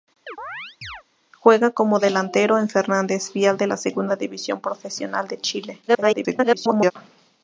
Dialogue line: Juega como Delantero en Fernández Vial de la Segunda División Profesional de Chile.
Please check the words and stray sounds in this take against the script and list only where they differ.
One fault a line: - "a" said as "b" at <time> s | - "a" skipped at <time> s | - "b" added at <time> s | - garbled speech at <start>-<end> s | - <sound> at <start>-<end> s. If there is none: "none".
- chirp at 0.3-1.0 s
- garbled speech at 5.9-6.9 s